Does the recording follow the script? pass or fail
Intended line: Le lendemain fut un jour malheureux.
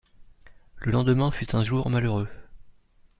pass